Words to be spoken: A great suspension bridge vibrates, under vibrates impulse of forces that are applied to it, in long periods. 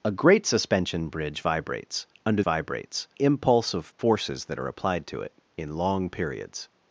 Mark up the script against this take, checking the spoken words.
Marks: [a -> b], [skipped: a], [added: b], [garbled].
A great suspension bridge vibrates, under vibrates impulse of forces that are applied to it, in long periods.